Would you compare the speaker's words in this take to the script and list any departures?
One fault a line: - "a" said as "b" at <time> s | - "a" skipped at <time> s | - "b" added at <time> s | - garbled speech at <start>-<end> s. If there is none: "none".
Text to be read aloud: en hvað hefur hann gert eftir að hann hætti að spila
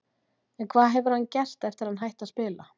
none